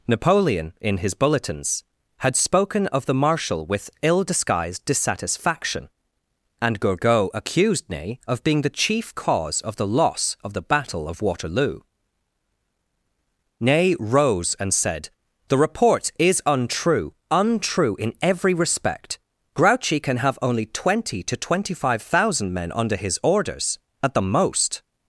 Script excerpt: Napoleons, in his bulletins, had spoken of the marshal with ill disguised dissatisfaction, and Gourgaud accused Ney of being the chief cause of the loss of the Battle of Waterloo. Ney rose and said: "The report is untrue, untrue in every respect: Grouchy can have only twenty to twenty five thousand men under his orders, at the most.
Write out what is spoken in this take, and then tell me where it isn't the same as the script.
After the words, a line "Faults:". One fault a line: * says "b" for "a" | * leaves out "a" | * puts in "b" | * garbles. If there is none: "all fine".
Napoleon, in his bulletins, had spoken of the marshal with ill disguised dissatisfaction, and Gourgaud accused Ney of being the chief cause of the loss of the Battle of Waterloo. Ney rose and said: "The report is untrue, untrue in every respect: Grouchy can have only twenty to twenty five thousand men under his orders, at the most.
Faults:
* says "Napoleon" for "Napoleons"